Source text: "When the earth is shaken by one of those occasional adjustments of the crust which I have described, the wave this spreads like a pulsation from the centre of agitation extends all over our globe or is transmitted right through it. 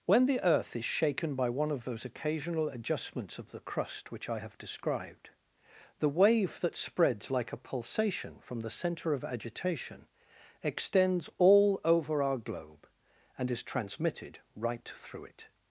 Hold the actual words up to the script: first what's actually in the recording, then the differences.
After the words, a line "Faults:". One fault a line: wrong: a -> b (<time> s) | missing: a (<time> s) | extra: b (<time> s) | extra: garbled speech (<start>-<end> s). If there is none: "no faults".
"When the earth is shaken by one of those occasional adjustments of the crust which I have described, the wave that spreads like a pulsation from the centre of agitation extends all over our globe and is transmitted right through it.
Faults:
wrong: this -> that (6.6 s)
wrong: or -> and (13.4 s)